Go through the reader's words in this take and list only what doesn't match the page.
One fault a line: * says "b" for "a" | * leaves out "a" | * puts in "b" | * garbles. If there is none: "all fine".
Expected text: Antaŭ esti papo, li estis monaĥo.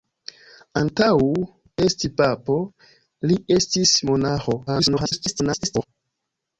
* garbles